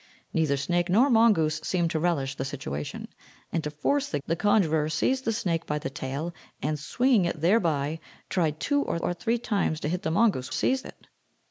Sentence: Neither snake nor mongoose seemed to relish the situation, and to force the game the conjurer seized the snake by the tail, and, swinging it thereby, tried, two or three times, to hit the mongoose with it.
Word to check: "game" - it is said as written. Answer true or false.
false